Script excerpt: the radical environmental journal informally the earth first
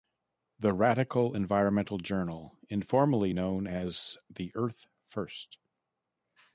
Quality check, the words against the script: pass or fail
fail